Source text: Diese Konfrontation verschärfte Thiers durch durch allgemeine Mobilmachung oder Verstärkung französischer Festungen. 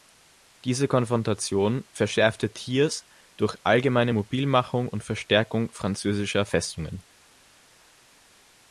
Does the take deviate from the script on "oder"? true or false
true